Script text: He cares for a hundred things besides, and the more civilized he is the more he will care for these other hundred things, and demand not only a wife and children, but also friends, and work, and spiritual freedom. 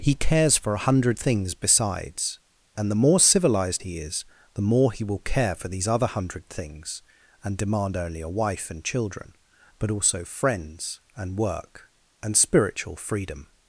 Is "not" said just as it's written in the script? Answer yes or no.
no